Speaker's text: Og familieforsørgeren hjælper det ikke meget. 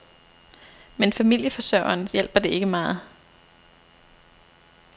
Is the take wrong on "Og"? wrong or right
wrong